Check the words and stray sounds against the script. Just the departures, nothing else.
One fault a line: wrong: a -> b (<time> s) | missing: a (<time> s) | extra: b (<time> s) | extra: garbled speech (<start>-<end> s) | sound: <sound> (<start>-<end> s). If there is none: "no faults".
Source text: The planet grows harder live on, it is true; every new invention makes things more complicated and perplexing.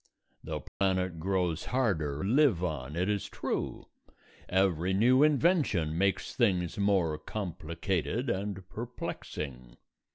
sound: dropout (0.7-0.8 s)